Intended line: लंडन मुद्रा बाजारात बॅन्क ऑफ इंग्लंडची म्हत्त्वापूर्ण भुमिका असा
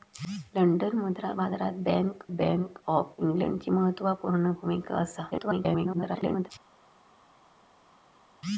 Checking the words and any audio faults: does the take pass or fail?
fail